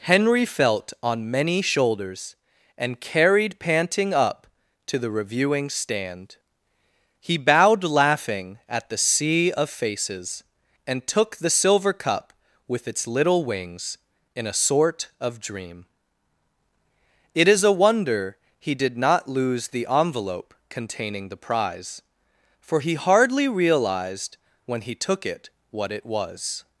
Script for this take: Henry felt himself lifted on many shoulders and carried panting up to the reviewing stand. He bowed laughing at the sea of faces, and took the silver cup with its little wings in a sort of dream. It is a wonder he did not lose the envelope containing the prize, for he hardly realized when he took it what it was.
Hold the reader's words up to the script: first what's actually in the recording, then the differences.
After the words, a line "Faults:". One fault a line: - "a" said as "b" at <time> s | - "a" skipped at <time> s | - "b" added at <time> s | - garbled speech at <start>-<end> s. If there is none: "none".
Henry felt on many shoulders and carried panting up to the reviewing stand. He bowed laughing at the sea of faces, and took the silver cup with its little wings in a sort of dream. It is a wonder he did not lose the envelope containing the prize, for he hardly realized when he took it what it was.
Faults:
- "himself lifted" skipped at 0.9 s